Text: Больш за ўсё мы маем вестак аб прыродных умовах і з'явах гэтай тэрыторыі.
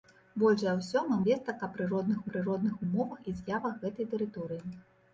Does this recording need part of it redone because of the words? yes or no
yes